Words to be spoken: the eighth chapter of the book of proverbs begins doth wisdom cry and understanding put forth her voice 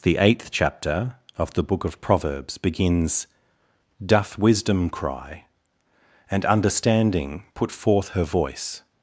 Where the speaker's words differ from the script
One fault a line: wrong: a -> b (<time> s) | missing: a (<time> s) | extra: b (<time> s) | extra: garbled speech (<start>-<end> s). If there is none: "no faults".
no faults